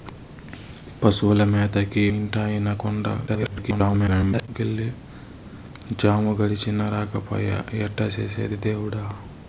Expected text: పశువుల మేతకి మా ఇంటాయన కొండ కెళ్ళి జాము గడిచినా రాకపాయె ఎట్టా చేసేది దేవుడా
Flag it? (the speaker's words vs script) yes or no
yes